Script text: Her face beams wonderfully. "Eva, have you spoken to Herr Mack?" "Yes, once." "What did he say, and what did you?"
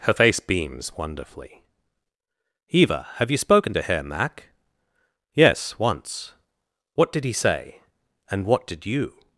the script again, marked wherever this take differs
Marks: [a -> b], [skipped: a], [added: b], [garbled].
Her face beams wonderfully. "Eva, have you spoken to Herr Mack?" "Yes, once." "What did he say, and what did you?"